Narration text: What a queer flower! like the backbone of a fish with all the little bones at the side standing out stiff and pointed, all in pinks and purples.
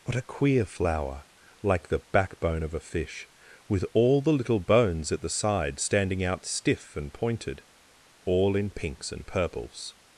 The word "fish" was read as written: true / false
true